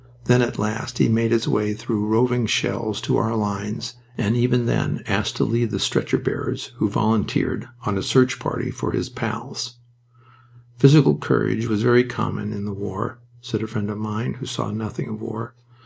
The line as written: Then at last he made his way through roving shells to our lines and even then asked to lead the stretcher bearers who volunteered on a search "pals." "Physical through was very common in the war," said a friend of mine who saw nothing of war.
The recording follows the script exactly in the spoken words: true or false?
false